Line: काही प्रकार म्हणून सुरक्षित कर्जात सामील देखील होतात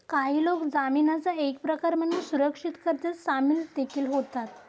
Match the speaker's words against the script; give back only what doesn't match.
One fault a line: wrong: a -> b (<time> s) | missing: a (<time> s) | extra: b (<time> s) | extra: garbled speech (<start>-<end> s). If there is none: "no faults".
extra: लोक जामीनाचा एक (0.4 s)